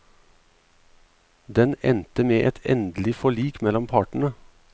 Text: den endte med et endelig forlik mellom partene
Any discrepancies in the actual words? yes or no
no